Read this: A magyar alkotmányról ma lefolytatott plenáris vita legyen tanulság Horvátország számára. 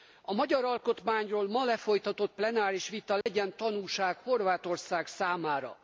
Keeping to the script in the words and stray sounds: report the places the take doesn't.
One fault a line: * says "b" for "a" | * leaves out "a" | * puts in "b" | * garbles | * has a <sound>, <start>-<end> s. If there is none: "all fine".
* has a dropout, 3.2-3.3 s